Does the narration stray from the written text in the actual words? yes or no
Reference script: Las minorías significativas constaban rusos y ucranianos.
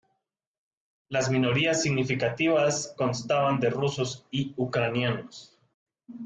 yes